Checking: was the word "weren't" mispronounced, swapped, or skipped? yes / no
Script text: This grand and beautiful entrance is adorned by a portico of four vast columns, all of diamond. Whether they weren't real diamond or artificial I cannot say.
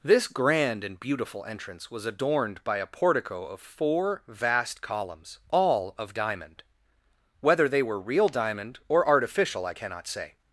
yes